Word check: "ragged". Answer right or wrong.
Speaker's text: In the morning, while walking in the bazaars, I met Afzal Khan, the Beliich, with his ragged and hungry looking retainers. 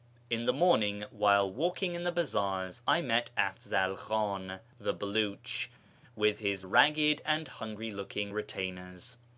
right